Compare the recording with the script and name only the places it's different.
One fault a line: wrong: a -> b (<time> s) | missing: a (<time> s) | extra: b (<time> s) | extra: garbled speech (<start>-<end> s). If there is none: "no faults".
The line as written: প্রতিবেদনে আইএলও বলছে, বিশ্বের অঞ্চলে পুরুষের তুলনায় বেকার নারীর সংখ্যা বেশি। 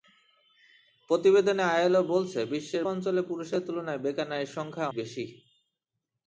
no faults